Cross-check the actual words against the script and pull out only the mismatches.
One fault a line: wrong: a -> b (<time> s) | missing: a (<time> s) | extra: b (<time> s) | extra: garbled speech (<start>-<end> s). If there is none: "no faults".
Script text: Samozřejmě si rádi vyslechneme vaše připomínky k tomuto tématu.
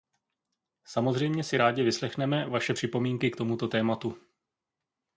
no faults